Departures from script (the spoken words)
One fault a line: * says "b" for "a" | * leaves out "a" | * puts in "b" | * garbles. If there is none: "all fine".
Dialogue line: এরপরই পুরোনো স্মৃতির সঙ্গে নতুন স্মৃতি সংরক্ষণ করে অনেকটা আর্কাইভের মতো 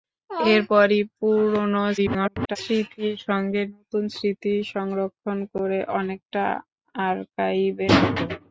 * garbles